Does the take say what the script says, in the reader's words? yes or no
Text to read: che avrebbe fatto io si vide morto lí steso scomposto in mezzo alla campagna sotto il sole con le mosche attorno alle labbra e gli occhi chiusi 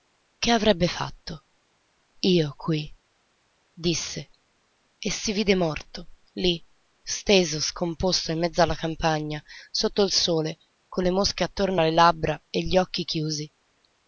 no